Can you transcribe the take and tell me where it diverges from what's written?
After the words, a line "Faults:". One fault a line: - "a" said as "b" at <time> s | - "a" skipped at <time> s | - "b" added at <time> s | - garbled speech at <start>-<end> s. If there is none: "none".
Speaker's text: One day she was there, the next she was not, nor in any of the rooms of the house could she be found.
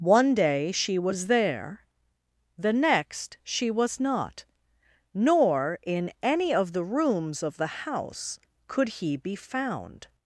One day she was there, the next she was not, nor in any of the rooms of the house could he be found.
Faults:
- "she" said as "he" at 8.9 s